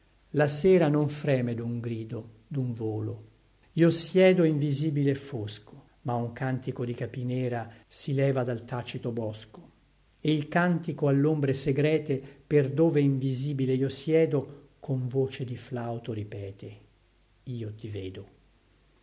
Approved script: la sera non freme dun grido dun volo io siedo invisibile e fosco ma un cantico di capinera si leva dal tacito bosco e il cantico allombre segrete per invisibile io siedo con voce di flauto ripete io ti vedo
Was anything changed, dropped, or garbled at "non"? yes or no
no